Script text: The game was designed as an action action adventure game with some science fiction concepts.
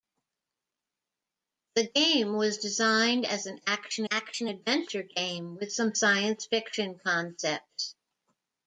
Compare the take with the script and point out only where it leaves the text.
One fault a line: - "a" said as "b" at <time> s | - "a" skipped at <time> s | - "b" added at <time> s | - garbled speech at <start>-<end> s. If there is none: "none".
none